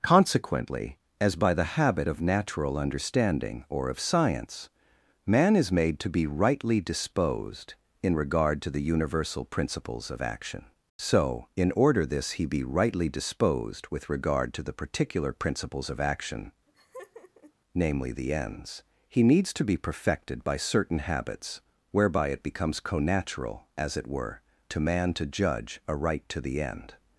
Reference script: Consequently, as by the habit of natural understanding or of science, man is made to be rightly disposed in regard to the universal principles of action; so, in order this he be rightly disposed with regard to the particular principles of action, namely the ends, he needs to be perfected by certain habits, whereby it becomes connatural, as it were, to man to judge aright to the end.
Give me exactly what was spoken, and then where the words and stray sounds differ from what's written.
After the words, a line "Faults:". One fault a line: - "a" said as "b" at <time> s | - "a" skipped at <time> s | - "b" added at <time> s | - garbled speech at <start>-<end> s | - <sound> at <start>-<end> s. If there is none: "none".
Consequently, as by the habit of natural understanding or of science, man is made to be rightly disposed in regard to the universal principles of action; so, in order this he be rightly disposed with regard to the particular principles of action, namely the ends, he needs to be perfected by certain habits, whereby it becomes connatural, as it were, to man to judge aright to the end.
Faults:
- laugh at 16.7-17.5 s